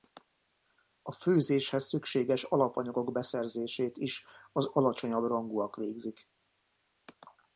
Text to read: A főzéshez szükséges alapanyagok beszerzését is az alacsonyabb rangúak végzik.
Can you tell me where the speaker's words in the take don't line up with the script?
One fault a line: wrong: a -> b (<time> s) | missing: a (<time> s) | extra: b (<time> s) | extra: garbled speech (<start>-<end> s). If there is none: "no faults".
no faults